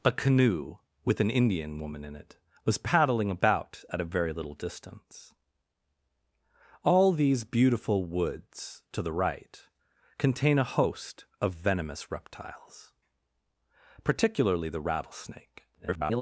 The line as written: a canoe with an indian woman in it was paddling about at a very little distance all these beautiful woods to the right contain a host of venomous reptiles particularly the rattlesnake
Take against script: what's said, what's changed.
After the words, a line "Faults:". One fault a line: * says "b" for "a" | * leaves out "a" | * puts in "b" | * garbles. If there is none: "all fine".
a canoe with an indian woman in it was paddling about at a very little distance all these beautiful woods to the right contain a host of venomous reptiles particularly the rattlesnake [garbled]
Faults:
* garbles